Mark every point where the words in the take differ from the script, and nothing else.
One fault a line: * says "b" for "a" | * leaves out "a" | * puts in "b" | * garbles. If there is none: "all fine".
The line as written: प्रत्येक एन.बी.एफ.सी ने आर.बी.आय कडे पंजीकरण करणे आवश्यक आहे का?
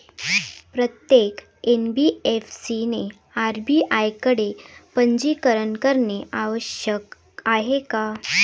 all fine